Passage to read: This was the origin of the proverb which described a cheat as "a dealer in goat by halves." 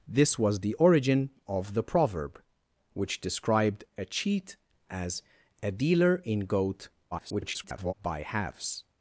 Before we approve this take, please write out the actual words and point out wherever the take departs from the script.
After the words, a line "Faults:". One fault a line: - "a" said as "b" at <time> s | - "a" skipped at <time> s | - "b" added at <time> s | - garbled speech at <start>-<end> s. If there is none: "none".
This was the origin of the proverb which described a cheat as "a dealer in goat [garbled] by halves."
Faults:
- garbled speech at 7.1-7.9 s